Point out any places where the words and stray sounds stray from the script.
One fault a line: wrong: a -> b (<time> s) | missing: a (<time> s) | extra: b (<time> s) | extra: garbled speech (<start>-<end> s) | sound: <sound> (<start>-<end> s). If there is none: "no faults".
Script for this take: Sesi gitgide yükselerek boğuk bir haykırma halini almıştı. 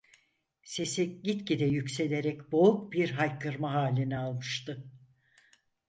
no faults